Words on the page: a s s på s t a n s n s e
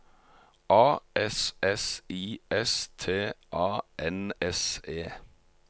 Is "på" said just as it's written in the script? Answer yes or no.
no